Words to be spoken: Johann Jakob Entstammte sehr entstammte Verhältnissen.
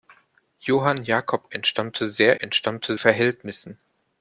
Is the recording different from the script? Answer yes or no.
no